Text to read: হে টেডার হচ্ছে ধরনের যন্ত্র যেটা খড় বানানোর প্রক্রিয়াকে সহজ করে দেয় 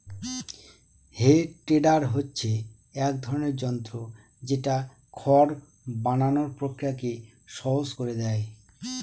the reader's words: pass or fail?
fail